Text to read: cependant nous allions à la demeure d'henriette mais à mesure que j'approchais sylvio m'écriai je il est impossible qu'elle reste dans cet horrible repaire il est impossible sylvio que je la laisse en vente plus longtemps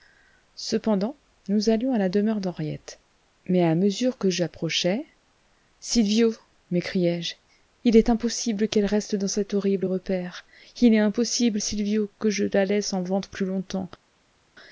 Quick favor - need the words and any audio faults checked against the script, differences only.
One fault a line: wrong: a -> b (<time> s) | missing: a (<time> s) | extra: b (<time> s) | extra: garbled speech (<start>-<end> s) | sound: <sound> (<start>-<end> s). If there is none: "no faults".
no faults